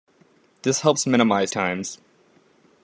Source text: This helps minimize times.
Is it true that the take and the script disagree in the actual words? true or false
false